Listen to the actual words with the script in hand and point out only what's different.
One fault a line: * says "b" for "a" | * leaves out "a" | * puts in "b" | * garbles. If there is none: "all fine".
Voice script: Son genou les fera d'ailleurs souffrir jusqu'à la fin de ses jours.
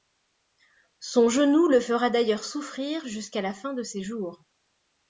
* says "le" for "les"